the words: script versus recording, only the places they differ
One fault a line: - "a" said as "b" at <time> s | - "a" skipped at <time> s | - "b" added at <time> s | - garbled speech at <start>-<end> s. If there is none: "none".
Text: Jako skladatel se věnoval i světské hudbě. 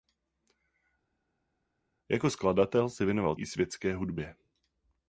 none